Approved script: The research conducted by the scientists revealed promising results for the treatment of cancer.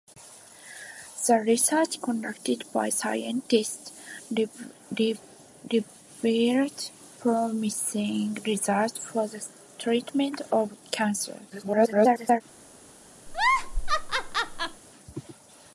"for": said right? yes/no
yes